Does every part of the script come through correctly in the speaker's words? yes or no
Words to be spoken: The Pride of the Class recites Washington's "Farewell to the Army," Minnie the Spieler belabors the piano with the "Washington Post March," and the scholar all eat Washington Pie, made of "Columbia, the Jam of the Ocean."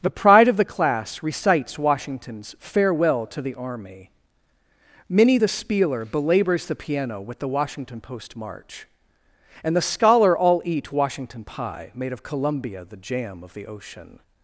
yes